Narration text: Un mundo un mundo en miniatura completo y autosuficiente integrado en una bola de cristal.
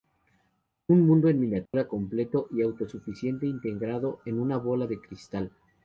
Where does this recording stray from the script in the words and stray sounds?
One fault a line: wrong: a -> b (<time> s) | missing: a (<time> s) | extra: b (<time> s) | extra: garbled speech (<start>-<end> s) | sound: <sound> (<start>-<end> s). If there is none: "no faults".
missing: un mundo (1.3 s)
sound: dropout (1.7-1.7 s)